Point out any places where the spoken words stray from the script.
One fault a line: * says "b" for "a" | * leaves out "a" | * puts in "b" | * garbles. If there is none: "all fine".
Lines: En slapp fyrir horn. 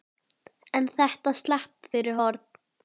* puts in "þetta"